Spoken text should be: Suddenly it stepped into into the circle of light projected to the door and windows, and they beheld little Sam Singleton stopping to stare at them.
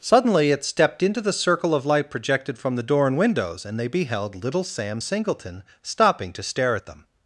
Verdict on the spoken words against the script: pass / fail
fail